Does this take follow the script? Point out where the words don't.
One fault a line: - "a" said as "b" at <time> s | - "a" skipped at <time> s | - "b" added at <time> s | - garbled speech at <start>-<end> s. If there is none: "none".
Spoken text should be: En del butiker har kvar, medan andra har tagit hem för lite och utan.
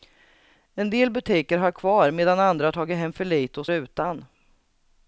none